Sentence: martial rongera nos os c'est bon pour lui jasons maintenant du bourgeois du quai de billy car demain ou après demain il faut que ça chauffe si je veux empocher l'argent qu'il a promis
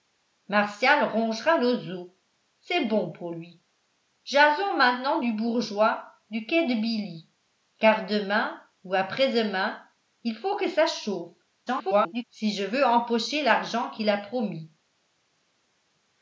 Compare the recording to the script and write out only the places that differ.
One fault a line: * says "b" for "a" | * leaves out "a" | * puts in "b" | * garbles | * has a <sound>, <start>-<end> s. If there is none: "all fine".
* garbles